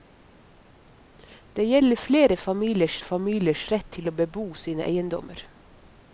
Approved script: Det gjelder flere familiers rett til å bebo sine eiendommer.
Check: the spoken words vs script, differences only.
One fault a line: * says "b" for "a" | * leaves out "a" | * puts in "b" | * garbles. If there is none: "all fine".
* puts in "familiers"